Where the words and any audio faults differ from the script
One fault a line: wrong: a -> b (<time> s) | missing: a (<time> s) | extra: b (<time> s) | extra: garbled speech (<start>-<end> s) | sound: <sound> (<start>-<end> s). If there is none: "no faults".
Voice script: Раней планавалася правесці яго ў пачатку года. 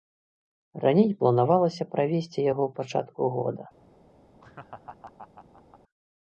sound: laugh (4.4-5.8 s)